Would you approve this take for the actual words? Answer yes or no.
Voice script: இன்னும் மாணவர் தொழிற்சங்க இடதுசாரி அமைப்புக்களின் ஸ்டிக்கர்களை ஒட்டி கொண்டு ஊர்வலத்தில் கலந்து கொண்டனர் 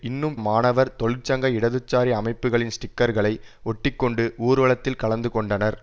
yes